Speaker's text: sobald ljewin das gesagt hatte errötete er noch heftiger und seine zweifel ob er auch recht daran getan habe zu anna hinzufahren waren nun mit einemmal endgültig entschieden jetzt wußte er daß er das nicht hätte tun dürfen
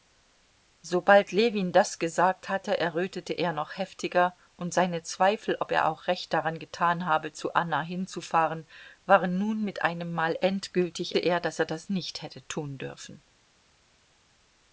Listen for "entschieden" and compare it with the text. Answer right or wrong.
wrong